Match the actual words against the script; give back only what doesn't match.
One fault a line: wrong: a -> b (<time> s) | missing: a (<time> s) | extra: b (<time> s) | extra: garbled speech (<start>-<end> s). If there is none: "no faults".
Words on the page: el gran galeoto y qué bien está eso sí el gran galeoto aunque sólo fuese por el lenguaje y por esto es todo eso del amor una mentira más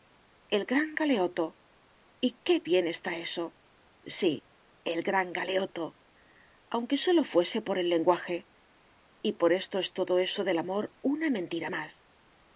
no faults